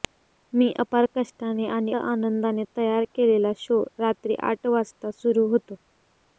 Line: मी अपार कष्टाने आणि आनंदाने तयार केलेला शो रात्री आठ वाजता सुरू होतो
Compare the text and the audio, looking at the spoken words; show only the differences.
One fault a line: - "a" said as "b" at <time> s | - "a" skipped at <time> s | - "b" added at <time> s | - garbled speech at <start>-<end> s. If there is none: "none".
none